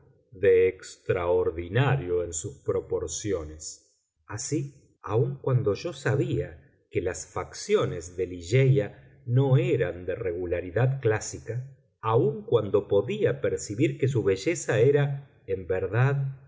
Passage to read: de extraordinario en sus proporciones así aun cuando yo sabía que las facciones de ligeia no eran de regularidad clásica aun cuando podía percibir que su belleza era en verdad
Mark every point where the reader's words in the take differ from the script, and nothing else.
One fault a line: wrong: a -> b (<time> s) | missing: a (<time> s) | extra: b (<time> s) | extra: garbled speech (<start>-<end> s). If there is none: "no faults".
no faults